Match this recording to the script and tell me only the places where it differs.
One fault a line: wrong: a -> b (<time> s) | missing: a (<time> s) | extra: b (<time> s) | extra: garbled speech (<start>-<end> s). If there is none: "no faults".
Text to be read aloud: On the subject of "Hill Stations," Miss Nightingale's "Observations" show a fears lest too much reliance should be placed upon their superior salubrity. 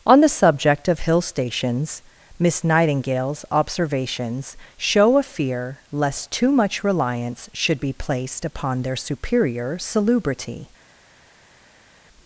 wrong: fears -> fear (5.2 s)